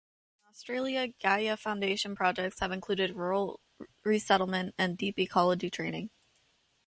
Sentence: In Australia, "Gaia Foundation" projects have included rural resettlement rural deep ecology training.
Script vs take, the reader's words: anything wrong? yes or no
yes